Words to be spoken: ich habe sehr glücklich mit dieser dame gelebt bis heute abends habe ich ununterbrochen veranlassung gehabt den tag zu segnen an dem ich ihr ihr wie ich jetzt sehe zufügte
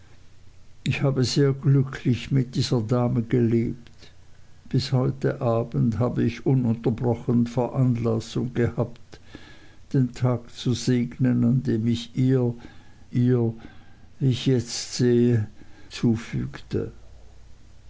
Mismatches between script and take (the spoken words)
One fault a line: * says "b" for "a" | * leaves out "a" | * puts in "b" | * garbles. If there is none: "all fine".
all fine